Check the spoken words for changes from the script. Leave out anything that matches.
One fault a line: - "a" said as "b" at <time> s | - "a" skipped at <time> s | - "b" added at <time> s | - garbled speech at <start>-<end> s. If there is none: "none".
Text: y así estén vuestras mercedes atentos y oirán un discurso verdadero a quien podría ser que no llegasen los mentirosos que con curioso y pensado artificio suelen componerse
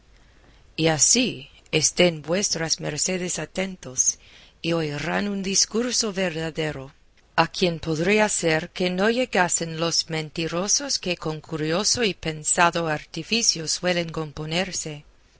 none